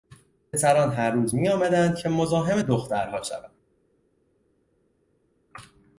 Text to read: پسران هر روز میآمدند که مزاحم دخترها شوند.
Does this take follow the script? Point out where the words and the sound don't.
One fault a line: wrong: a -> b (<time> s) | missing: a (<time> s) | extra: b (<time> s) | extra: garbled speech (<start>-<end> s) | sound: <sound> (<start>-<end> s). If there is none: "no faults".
no faults